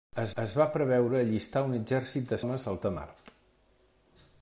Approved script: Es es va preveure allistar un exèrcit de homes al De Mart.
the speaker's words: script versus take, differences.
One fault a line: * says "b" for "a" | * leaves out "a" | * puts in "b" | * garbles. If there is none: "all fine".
all fine